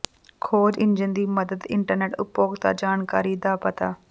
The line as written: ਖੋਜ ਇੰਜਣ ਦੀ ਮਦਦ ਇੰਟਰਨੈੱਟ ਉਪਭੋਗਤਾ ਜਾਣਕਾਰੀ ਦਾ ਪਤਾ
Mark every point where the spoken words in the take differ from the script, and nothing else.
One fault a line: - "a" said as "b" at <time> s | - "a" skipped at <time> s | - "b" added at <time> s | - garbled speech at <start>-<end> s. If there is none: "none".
none